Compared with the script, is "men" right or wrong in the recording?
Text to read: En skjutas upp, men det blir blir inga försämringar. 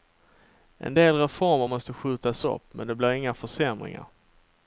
right